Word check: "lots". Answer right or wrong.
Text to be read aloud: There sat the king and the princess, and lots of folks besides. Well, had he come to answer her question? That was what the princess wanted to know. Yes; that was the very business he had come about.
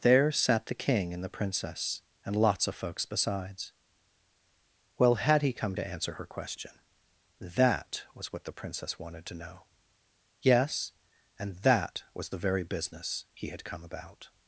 right